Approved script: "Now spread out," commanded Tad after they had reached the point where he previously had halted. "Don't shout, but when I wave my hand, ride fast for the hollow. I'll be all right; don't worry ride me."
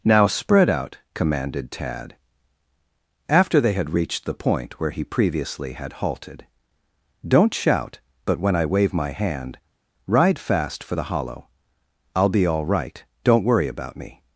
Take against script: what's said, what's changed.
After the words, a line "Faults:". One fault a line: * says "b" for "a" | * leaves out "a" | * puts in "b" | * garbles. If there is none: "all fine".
"Now spread out," commanded Tad after they had reached the point where he previously had halted. "Don't shout, but when I wave my hand, ride fast for the hollow. I'll be all right; don't worry about me."
Faults:
* says "about" for "ride"